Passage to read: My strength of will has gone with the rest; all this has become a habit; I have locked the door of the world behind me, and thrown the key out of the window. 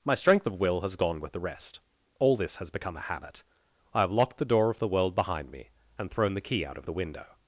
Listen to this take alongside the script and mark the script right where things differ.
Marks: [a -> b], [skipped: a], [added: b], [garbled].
My strength of will has gone with the rest; all this has become a habit; I have locked the door of the world behind me, and thrown the key out of the window.